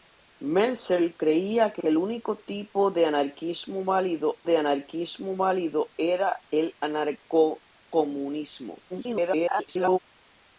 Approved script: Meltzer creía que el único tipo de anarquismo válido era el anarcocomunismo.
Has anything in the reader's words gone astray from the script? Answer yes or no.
yes